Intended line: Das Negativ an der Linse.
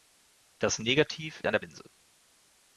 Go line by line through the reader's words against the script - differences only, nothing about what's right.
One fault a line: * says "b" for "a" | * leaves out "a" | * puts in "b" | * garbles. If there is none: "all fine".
all fine